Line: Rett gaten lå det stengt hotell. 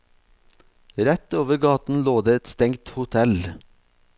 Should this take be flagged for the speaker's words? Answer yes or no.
yes